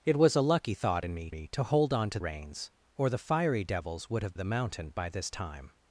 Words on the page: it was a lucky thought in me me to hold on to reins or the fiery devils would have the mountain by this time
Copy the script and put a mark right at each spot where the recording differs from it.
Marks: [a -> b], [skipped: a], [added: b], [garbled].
it was a lucky thought in me me to hold on to reins or the fiery devils would have the mountain by this time